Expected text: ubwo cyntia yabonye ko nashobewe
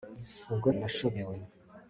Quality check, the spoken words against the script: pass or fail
fail